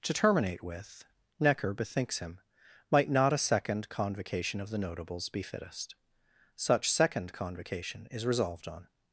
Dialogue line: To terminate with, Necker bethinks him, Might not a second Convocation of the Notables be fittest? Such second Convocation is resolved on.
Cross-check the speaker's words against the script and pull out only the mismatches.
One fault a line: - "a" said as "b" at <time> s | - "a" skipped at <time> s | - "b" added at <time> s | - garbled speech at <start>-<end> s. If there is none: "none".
none